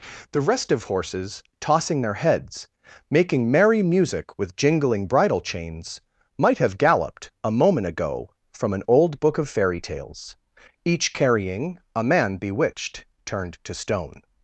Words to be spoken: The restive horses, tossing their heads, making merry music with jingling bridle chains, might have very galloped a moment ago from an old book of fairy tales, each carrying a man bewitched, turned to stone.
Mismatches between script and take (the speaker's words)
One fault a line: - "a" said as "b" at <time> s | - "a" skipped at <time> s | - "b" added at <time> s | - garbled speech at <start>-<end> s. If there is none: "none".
- "very" skipped at 6.8 s